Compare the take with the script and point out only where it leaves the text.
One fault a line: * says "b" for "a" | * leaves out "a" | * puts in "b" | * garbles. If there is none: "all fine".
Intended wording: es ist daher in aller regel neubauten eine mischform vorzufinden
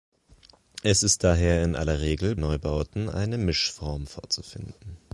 all fine